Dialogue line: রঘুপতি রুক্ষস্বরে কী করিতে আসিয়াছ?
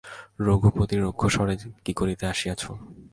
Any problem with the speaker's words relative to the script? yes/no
no